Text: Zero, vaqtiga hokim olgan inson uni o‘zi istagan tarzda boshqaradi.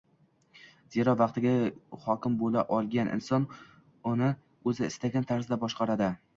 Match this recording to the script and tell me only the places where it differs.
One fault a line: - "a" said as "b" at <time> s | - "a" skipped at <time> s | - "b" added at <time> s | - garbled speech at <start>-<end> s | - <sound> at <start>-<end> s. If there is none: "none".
- "bo‘la" added at 2.4 s